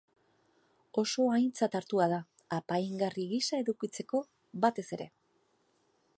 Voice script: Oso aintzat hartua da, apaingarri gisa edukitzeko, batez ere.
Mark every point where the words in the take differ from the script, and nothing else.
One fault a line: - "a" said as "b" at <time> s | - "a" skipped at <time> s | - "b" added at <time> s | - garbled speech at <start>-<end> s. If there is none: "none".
none